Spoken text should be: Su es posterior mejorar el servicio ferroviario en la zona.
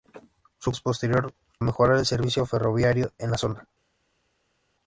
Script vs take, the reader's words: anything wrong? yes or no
no